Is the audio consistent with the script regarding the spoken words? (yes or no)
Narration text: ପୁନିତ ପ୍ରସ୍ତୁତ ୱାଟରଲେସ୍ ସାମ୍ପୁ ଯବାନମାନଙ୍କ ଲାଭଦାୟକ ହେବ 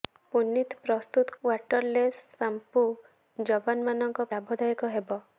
yes